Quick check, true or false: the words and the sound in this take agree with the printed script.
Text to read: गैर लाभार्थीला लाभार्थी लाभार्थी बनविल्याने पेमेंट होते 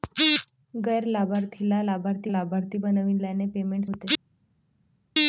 true